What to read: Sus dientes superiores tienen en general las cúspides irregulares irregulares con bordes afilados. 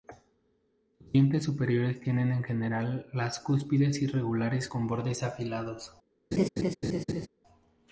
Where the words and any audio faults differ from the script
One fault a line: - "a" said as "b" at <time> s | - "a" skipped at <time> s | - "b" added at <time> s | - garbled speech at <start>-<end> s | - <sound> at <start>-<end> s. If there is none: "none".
- "irregulares" skipped at 4.7 s
- laugh at 6.3-7.3 s